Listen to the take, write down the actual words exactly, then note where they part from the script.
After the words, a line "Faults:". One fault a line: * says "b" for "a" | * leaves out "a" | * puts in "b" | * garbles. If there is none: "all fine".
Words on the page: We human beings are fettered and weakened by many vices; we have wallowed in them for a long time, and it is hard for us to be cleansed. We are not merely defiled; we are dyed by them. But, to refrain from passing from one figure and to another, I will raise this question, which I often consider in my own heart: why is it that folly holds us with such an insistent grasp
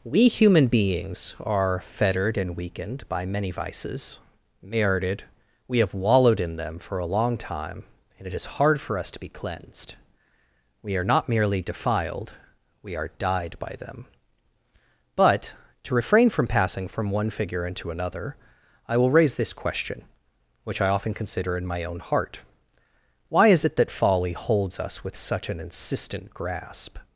We human beings are fettered and weakened by many vices; merited we have wallowed in them for a long time, and it is hard for us to be cleansed. We are not merely defiled; we are dyed by them. But, to refrain from passing from one figure into another, I will raise this question, which I often consider in my own heart: why is it that folly holds us with such an insistent grasp
Faults:
* puts in "merited"
* says "into" for "and to"